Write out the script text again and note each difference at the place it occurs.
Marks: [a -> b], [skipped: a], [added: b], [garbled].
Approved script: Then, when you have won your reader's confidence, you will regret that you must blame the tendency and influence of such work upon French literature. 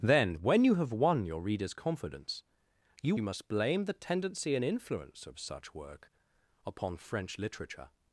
Then, when you have won your reader's confidence, you [skipped: will regret that] you must blame the tendency and influence of such work upon French literature.